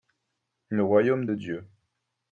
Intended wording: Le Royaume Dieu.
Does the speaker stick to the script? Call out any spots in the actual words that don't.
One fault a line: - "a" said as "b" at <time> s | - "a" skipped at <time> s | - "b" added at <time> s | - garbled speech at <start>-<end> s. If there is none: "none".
- "de" added at 1.2 s